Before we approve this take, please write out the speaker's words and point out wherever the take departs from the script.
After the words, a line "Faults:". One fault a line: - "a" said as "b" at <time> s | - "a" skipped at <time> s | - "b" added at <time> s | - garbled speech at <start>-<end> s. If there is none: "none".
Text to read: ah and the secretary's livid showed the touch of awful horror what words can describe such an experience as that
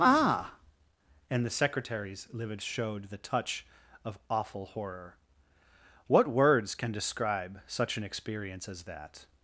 ah and the secretary's livid showed the touch of awful horror what words can describe such an experience as that
Faults:
none